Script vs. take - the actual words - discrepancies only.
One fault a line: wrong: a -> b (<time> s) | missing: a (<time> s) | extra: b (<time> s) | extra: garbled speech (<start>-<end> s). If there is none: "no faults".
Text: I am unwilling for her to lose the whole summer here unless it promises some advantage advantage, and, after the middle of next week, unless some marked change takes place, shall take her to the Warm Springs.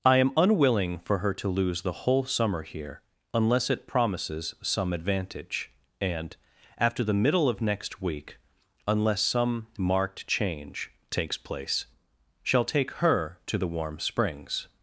missing: advantage (5.7 s)